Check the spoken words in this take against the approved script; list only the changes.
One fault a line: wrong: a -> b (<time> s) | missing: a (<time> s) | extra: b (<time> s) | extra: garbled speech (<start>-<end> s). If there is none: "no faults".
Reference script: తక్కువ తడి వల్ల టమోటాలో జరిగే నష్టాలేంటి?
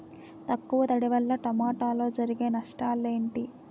no faults